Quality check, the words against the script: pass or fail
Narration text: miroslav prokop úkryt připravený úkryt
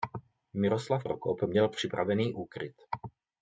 fail